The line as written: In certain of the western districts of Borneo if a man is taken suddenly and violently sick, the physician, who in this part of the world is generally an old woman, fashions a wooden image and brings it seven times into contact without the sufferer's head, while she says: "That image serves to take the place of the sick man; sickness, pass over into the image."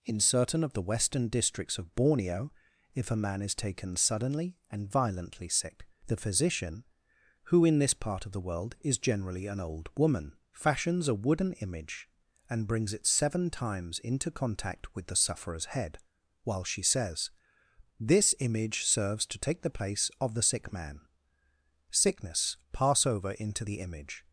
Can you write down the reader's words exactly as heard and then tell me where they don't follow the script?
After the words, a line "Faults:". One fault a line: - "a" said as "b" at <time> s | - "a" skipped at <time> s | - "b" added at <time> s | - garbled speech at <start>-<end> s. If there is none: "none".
In certain of the western districts of Borneo if a man is taken suddenly and violently sick, the physician, who in this part of the world is generally an old woman, fashions a wooden image and brings it seven times into contact with the sufferer's head, while she says: "This image serves to take the place of the sick man; sickness, pass over into the image."
Faults:
- "without" said as "with" at 14.9 s
- "That" said as "This" at 18.0 s